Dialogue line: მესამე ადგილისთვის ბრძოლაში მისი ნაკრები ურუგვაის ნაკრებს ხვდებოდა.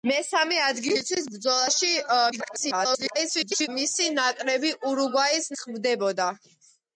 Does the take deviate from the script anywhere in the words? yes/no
yes